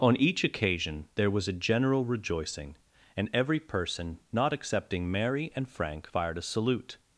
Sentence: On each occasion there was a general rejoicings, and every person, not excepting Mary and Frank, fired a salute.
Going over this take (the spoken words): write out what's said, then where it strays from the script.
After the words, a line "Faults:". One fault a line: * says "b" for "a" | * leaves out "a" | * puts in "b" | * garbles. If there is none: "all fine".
On each occasion there was a general rejoicing, and every person, not excepting Mary and Frank, fired a salute.
Faults:
* says "rejoicing" for "rejoicings"